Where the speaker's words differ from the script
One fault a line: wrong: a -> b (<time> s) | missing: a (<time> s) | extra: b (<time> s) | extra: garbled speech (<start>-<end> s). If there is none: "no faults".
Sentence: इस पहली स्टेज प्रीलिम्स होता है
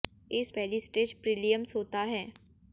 no faults